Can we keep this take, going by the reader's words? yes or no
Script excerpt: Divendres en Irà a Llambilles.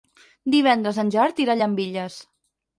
no